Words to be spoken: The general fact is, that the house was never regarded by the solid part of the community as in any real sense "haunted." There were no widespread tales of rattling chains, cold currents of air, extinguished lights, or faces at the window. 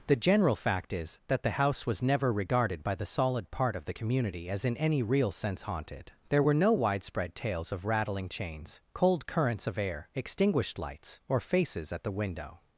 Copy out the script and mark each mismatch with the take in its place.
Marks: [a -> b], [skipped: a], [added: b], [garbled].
The general fact is, that the house was never regarded by the solid part of the community as in any real sense "haunted." There were no widespread tales of rattling chains, cold currents of air, extinguished lights, or faces at the window.